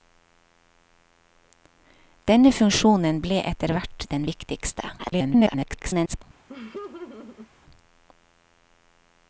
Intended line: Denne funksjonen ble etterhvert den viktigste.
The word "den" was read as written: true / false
true